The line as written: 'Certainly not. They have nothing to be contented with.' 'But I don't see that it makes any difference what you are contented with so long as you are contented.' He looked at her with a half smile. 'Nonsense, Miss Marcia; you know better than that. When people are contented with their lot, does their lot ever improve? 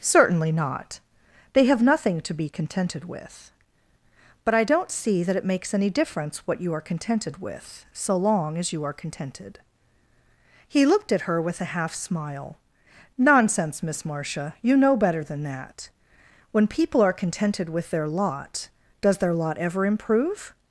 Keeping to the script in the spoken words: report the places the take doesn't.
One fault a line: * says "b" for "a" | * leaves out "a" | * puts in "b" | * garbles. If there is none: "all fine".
all fine